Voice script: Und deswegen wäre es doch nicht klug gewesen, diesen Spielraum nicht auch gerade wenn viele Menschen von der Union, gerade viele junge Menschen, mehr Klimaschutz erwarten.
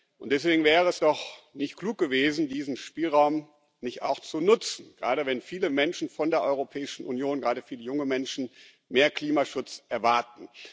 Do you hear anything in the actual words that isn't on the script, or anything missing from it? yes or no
yes